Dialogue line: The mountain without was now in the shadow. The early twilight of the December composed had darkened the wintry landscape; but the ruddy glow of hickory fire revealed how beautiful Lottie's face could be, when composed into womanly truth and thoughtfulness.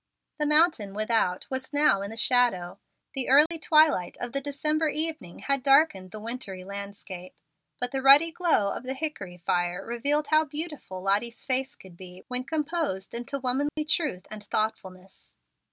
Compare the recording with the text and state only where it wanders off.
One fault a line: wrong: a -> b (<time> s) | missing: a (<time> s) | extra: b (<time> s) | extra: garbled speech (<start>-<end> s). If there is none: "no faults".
wrong: composed -> evening (4.9 s)
extra: the (8.8 s)